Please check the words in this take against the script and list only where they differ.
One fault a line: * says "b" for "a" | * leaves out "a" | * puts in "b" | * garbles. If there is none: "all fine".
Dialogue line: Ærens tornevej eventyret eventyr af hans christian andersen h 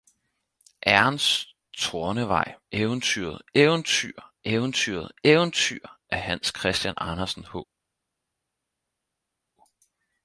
* puts in "eventyret eventyr"